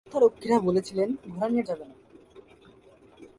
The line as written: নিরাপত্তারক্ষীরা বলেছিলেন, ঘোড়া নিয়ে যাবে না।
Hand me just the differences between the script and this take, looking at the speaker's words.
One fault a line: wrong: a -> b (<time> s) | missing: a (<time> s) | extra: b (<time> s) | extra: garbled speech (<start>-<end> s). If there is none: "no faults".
no faults